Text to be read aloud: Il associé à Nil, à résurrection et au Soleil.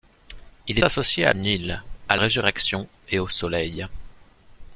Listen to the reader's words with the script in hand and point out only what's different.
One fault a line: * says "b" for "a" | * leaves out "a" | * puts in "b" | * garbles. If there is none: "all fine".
all fine